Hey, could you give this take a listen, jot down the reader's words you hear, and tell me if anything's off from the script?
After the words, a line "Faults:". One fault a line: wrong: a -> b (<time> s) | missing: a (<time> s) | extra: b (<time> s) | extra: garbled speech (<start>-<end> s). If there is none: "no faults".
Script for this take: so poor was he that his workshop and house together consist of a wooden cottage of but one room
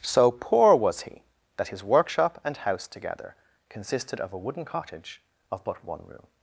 so poor was he that his workshop and house together consisted of a wooden cottage of but one room
Faults:
wrong: consist -> consisted (3.7 s)